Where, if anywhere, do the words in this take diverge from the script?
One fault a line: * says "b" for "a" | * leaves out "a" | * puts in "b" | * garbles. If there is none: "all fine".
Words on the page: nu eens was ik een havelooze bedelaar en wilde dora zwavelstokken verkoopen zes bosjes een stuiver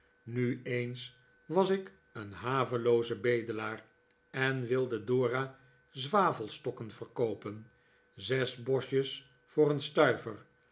* puts in "voor"